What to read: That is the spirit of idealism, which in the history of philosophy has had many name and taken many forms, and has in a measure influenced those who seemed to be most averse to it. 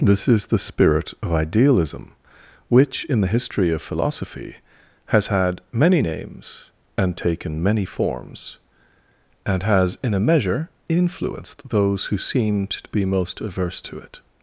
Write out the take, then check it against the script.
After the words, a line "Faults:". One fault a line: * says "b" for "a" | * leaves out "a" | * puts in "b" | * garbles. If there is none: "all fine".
This is the spirit of idealism, which in the history of philosophy has had many names and taken many forms, and has in a measure influenced those who seemed to be most averse to it.
Faults:
* says "This" for "That"
* says "names" for "name"